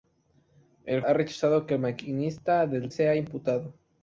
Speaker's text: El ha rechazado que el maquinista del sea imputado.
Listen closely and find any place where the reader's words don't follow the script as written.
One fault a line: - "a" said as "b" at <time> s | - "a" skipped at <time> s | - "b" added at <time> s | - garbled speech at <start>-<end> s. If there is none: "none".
none